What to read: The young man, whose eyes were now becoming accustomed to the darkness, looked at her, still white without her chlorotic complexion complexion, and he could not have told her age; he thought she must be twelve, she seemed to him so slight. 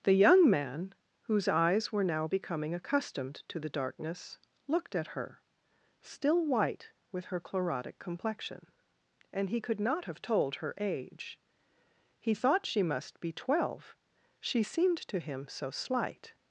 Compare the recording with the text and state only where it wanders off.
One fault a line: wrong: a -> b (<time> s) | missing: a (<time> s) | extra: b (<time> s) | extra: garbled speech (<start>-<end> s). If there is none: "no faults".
wrong: without -> with (7.1 s)
missing: complexion (8.7 s)